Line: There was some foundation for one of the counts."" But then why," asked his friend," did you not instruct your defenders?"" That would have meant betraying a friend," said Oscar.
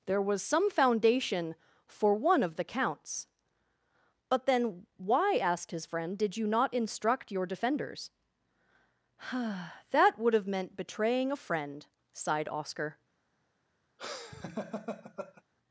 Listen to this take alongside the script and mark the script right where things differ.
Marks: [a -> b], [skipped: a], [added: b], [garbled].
There was some foundation for one of the counts."" But then why," asked his friend," did you not instruct your defenders?"" That would have meant betraying a friend," [said -> sighed] Oscar.